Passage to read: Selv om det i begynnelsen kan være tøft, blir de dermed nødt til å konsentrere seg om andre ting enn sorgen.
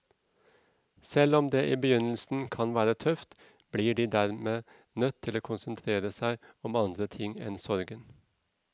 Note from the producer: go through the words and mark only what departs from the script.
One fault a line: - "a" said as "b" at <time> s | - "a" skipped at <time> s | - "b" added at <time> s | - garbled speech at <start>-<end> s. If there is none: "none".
none